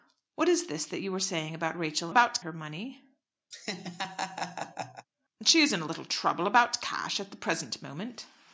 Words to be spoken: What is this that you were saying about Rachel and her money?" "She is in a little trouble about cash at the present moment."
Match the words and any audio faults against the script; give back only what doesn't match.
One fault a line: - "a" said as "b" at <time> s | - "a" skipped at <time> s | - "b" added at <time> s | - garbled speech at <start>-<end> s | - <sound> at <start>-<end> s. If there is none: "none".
- "and" said as "about" at 2.1 s
- laugh at 3.5-5.1 s